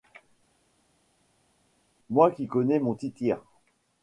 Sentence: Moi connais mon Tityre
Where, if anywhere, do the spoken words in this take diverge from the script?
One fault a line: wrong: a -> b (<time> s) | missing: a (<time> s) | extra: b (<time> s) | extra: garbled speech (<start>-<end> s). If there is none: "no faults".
extra: qui (2.3 s)